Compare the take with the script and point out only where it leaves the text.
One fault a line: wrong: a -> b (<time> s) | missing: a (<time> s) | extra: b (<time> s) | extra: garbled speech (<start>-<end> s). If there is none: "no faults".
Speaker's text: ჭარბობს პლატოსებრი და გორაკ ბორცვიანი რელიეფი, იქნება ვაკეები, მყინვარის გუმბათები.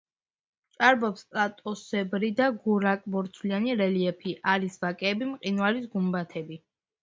wrong: იქნება -> არის (4.6 s)